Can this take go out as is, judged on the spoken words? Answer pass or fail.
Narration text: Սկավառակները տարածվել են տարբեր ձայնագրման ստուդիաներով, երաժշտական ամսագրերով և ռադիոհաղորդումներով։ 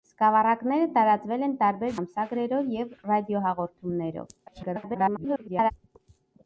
fail